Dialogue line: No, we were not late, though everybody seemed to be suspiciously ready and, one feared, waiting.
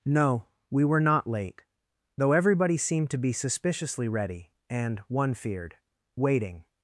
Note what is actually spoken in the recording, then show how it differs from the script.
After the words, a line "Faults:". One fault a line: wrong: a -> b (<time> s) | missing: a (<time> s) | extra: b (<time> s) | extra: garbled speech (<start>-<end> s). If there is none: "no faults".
No, we were not late, though everybody seemed to be suspiciously ready and, one feared, waiting.
Faults:
no faults